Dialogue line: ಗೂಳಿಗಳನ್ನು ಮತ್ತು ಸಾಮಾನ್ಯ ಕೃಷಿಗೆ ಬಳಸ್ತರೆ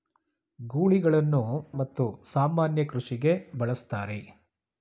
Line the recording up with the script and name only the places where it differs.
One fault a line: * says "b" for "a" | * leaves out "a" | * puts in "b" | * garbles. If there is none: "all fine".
all fine